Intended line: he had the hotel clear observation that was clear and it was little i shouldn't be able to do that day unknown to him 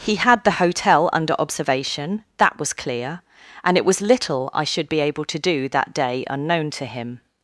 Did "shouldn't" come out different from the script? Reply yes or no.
yes